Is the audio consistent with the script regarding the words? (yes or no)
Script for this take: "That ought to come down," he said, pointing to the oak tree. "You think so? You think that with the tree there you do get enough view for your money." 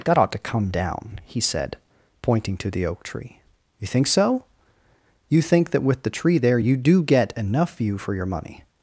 yes